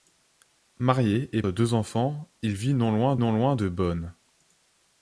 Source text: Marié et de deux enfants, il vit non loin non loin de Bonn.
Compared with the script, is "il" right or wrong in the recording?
right